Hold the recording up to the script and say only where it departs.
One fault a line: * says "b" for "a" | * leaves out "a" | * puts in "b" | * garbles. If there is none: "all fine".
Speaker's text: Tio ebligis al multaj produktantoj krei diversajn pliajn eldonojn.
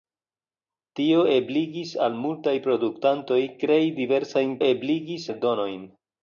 * says "ebligis" for "pliajn"